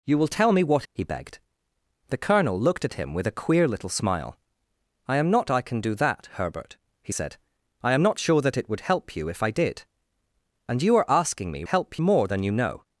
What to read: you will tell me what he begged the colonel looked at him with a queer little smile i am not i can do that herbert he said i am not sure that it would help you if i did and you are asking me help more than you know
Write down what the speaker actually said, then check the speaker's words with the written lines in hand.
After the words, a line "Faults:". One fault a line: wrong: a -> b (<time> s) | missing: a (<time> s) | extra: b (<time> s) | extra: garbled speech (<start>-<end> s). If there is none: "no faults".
you will tell me what he begged the colonel looked at him with a queer little smile i am not i can do that herbert he said i am not sure that it would help you if i did and you are asking me help more than you know
Faults:
no faults